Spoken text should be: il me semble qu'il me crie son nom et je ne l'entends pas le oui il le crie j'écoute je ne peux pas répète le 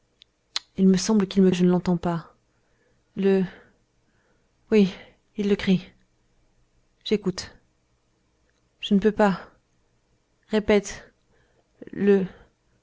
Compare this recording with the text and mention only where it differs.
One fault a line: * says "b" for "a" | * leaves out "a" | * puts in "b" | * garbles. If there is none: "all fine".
* leaves out "crie son nom"